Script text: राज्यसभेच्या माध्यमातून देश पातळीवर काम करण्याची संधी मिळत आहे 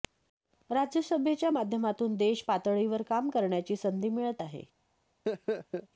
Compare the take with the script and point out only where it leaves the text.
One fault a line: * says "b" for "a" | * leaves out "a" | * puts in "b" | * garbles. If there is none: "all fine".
all fine